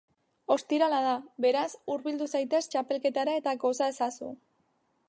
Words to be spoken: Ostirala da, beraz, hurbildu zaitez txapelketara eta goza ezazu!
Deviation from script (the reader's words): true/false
false